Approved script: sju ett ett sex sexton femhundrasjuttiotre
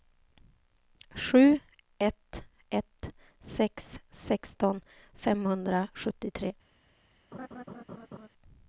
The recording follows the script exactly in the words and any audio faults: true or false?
false